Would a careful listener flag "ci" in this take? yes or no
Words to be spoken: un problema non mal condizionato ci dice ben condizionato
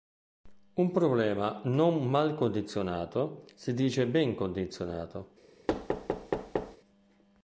yes